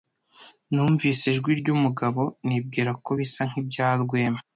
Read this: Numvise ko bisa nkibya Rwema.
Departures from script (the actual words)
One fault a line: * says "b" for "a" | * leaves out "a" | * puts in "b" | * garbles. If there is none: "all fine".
* puts in "ijwi ryumugabo nibwira"